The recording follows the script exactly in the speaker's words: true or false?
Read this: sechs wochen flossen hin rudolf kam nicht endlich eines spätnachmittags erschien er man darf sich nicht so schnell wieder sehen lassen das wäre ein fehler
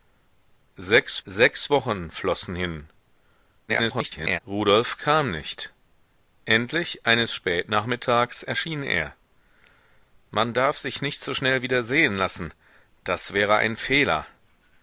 false